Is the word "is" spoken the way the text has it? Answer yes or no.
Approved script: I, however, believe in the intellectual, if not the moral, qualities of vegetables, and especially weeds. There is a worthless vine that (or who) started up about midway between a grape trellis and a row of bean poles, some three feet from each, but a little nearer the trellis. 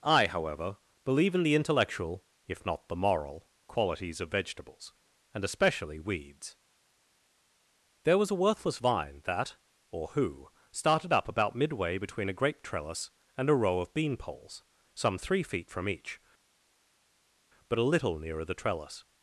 no